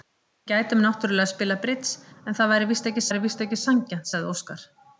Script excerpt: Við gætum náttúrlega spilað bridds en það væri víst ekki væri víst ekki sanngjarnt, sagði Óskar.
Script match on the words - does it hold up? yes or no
yes